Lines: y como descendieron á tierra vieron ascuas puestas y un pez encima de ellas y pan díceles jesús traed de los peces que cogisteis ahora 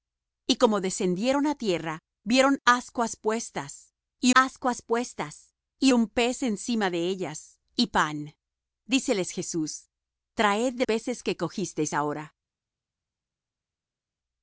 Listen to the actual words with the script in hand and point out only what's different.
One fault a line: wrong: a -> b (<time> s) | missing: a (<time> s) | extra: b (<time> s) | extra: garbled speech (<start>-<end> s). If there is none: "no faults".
extra: ascuas puestas y (4.3 s)
missing: los (10.8 s)